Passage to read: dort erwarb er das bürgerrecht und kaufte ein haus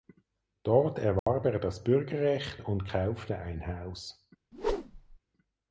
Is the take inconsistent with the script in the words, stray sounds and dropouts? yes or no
yes